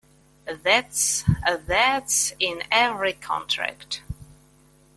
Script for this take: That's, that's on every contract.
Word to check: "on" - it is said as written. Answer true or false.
false